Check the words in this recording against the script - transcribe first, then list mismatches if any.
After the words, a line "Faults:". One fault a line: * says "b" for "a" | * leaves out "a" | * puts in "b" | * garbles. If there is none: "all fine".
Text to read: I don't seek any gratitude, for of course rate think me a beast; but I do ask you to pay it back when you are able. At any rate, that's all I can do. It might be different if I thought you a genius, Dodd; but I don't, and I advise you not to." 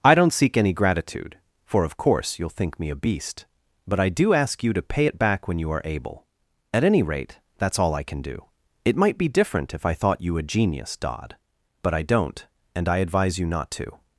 I don't seek any gratitude, for of course you'll think me a beast; but I do ask you to pay it back when you are able. At any rate, that's all I can do. It might be different if I thought you a genius, Dodd; but I don't, and I advise you not to."
Faults:
* says "you'll" for "rate"